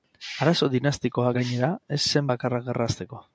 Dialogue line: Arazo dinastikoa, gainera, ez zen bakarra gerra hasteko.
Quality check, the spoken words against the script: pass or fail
pass